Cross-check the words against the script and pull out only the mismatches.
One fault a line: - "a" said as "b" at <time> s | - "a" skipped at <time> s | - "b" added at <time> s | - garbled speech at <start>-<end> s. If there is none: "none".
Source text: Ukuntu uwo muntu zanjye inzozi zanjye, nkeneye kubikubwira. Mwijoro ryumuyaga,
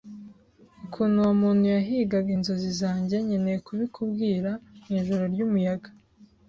- "zanjye" said as "yahigaga" at 1.8 s